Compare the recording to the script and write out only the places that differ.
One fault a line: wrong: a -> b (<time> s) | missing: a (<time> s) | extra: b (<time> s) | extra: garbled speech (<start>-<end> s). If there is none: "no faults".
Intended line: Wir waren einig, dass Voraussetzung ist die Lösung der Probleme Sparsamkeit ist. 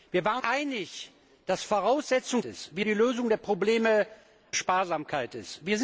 no faults